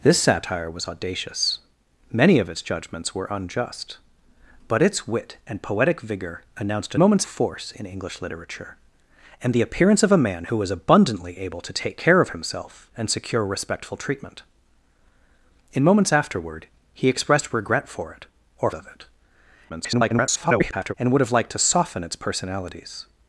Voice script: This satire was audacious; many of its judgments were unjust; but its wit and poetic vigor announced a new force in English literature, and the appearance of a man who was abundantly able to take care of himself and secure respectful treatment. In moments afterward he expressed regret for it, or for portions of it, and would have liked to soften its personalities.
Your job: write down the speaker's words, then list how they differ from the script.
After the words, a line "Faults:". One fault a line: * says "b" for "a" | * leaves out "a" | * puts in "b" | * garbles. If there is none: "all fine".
This satire was audacious; many of its judgments were unjust; but its wit and poetic vigor announced a moments force in English literature, and the appearance of a man who was abundantly able to take care of himself and secure respectful treatment. In moments afterward he expressed regret for it, or of it, [garbled] and would have liked to soften its personalities.
Faults:
* says "moments" for "new"
* leaves out "for portions"
* garbles